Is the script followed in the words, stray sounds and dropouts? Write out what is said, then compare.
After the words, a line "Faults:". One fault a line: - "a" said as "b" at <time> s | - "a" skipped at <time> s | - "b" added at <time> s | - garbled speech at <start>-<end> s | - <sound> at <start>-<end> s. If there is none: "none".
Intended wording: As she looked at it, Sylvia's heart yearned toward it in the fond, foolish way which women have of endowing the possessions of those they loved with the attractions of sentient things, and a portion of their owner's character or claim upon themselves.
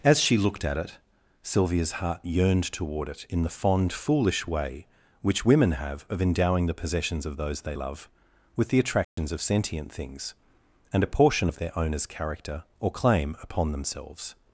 As she looked at it, Sylvia's heart yearned toward it in the fond, foolish way which women have of endowing the possessions of those they love with the attractions of sentient things, and a portion of their owner's character or claim upon themselves.
Faults:
- "loved" said as "love" at 7.7 s
- dropout at 9.0-9.2 s